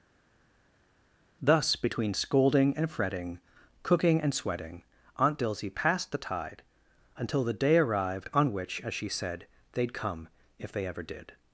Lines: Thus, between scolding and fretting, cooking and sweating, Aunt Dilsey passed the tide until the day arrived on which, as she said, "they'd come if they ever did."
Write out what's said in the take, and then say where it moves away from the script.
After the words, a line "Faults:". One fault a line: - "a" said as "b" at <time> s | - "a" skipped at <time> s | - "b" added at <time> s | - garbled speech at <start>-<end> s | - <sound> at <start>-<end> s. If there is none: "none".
Thus, between scolding and fretting, cooking and sweating, Aunt Dilsey passed the tide until the day arrived on which, as she said, "they'd come if they ever did."
Faults:
none